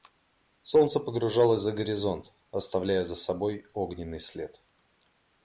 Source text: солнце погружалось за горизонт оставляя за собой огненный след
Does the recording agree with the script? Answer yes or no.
yes